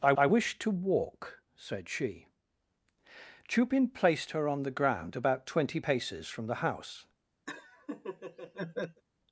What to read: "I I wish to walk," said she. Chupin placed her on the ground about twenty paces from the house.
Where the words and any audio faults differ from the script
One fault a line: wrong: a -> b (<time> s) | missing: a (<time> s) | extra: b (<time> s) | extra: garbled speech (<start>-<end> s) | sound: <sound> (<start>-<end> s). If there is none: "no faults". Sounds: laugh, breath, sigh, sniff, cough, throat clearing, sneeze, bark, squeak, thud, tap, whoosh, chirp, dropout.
sound: laugh (7.5-9.0 s)